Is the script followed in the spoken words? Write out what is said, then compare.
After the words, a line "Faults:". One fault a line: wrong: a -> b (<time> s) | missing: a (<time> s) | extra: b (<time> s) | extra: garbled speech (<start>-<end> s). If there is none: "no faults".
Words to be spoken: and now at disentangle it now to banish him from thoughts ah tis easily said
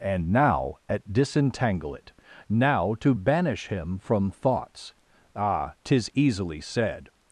and now at disentangle it now to banish him from thoughts ah tis easily said
Faults:
no faults